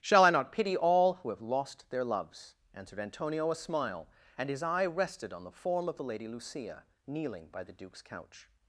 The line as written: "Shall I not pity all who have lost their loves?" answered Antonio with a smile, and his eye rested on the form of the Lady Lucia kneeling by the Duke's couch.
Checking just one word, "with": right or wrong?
wrong